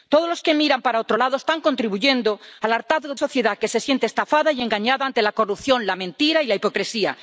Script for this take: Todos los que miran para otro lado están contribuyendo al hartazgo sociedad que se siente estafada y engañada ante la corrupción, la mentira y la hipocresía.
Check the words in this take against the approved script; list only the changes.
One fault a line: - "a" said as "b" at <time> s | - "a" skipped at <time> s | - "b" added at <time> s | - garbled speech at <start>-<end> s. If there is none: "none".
none